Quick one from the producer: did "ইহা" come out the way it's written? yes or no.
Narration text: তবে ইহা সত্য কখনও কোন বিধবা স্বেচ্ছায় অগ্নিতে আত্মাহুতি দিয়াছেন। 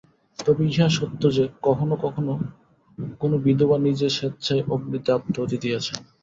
yes